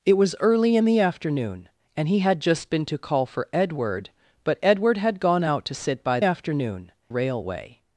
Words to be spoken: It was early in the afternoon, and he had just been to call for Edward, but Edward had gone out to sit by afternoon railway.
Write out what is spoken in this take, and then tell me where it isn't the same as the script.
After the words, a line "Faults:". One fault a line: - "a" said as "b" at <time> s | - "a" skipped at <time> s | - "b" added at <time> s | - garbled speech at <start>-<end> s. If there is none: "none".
It was early in the afternoon, and he had just been to call for Edward, but Edward had gone out to sit by afternoon railway.
Faults:
none